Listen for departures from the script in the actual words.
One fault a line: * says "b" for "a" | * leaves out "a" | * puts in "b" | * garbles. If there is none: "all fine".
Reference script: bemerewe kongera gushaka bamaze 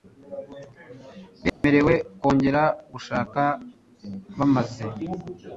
all fine